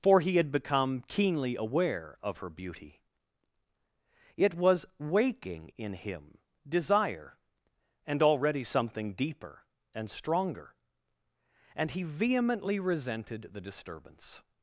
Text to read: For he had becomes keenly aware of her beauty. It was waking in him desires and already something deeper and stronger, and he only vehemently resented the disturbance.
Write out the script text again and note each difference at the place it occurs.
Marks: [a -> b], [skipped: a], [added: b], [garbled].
For he had [becomes -> become] keenly aware of her beauty. It was waking in him [desires -> desire] and already something deeper and stronger, and he [skipped: only] vehemently resented the disturbance.